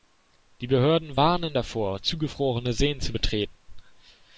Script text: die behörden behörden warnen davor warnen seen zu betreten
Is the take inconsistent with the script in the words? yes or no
yes